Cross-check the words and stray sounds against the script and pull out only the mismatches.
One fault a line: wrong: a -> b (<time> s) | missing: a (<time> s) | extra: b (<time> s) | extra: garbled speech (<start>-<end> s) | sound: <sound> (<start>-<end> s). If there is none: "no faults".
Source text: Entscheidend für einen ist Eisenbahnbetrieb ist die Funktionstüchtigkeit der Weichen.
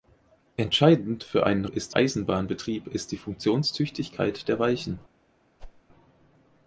sound: whoosh (5.6-5.8 s)